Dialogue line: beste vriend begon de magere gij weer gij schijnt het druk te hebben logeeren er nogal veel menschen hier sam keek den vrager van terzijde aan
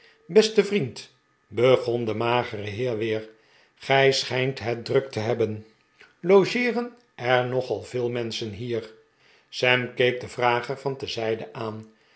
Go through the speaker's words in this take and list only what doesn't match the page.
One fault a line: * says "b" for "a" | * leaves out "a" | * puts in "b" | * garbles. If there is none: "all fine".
* says "heer" for "gij"